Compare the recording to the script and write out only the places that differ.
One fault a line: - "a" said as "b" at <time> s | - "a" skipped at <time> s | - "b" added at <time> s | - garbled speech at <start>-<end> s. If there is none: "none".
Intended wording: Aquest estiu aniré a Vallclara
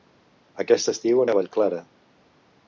- "aniré" skipped at 1.2 s